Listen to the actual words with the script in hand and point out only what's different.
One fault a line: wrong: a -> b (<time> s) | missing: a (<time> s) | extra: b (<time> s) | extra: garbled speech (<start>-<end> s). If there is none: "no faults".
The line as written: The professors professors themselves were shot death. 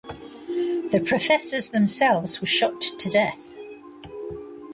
missing: professors (1.7 s)
extra: to (2.8 s)